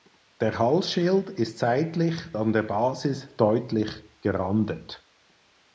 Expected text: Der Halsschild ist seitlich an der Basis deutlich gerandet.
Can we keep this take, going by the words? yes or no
yes